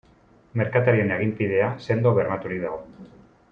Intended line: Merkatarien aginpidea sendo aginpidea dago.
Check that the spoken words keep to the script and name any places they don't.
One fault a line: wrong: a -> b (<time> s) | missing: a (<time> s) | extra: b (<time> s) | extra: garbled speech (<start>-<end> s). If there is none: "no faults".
wrong: aginpidea -> bermaturik (2.2 s)